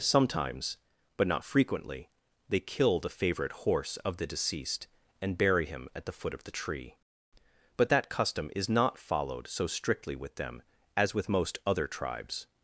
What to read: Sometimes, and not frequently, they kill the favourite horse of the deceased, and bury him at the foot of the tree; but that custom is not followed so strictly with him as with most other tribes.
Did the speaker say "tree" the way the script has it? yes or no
yes